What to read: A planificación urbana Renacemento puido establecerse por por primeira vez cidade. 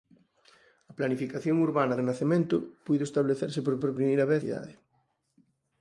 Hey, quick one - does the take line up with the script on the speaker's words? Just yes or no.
yes